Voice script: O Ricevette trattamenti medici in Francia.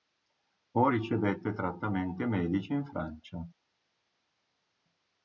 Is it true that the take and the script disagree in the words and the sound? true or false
false